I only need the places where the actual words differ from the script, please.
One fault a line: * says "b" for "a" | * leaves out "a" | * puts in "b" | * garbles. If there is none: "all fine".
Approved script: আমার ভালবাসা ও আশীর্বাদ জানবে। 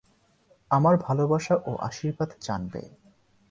all fine